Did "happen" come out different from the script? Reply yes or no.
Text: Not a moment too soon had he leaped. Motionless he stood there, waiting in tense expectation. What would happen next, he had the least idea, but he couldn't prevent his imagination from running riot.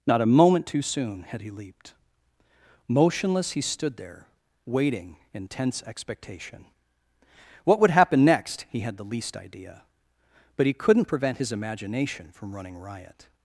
no